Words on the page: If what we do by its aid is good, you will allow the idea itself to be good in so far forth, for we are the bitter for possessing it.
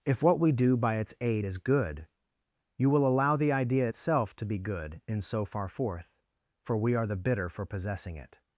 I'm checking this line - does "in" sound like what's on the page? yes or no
yes